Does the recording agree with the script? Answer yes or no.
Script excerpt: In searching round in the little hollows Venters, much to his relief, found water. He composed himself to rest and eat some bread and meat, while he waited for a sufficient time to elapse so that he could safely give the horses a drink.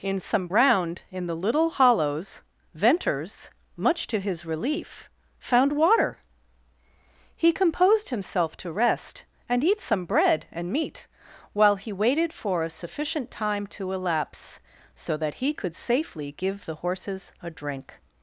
no